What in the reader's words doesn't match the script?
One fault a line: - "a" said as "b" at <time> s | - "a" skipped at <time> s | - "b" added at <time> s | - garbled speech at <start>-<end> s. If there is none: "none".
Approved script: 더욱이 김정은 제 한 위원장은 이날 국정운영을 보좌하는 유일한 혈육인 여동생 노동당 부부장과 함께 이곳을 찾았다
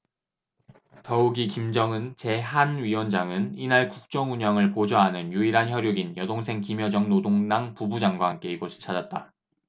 - "김여정" added at 6.6 s